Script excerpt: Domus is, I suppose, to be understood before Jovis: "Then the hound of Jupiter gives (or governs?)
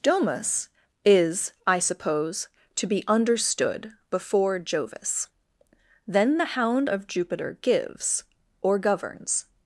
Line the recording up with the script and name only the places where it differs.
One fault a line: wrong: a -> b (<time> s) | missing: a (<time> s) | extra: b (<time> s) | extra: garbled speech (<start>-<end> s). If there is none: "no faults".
no faults